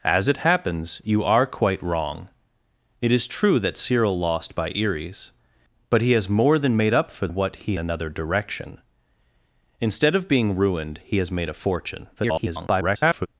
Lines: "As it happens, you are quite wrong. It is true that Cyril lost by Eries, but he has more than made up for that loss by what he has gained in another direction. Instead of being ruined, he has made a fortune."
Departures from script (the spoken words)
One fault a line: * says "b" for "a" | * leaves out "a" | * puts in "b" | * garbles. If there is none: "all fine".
* leaves out "that loss by"
* leaves out "has gained in"
* garbles